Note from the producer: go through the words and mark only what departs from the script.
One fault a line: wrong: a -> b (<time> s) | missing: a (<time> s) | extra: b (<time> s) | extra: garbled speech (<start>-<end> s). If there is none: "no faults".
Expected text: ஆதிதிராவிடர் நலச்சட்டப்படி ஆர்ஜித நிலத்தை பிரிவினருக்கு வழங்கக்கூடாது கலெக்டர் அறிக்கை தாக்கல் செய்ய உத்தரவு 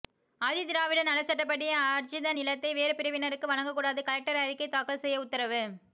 extra: வேறு (2.7 s)